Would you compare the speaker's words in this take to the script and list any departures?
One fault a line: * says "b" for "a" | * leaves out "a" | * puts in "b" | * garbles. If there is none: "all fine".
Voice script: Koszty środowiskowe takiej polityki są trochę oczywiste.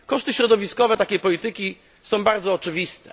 * says "bardzo" for "trochę"